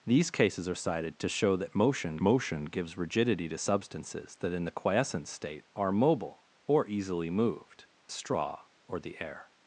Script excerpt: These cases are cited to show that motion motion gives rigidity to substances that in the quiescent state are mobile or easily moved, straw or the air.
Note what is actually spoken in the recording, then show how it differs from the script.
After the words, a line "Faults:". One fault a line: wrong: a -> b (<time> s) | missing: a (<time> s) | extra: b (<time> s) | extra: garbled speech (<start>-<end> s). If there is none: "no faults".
These cases are cited to show that motion motion gives rigidity to substances that in the quiescent state are mobile or easily moved, straw or the air.
Faults:
no faults